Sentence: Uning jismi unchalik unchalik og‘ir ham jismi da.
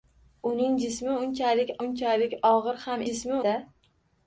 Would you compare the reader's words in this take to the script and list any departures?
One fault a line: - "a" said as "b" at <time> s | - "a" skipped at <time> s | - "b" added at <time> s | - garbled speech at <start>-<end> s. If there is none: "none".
none